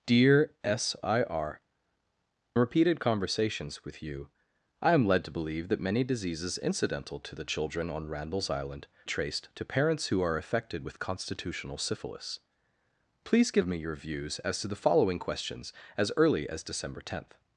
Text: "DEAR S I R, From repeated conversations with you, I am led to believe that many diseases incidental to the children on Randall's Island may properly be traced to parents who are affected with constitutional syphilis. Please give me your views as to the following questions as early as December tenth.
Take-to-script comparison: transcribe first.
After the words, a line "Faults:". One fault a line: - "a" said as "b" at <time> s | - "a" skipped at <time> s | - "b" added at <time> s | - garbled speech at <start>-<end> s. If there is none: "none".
"DEAR S I R, Repeated conversations with you, I am led to believe that many diseases incidental to the children on Randall's Island traced to parents who are affected with constitutional syphilis. Please give me your views as to the following questions as early as December tenth.
Faults:
- "From" skipped at 1.6 s
- "may properly be" skipped at 8.9 s